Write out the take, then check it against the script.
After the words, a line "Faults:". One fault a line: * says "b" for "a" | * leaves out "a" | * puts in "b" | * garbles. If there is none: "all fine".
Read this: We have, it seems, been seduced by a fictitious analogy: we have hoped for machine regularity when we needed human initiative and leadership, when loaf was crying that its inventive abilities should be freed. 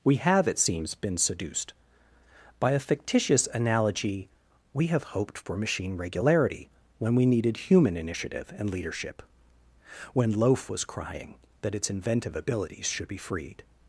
We have, it seems, been seduced by a fictitious analogy: we have hoped for machine regularity when we needed human initiative and leadership, when loaf was crying that its inventive abilities should be freed.
Faults:
all fine